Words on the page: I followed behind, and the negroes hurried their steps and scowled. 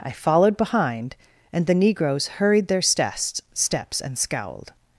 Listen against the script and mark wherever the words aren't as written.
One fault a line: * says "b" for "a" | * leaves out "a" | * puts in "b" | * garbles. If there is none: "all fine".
* puts in "steps"